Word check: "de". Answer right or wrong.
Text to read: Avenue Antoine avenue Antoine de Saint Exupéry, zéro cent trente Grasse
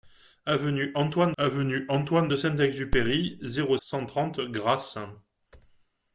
right